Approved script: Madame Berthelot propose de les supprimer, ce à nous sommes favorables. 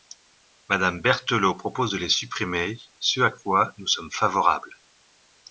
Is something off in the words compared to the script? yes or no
yes